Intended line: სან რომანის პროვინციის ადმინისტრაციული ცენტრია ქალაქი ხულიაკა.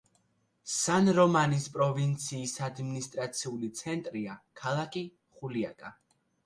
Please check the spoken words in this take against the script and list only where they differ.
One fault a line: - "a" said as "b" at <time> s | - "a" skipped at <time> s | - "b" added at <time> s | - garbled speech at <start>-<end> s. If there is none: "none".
none